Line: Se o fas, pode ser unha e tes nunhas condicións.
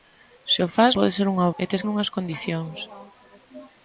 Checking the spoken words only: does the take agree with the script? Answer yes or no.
yes